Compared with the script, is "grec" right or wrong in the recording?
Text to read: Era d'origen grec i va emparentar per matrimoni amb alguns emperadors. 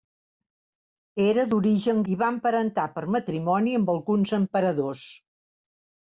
wrong